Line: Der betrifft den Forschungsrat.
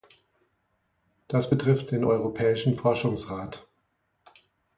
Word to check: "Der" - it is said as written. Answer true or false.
false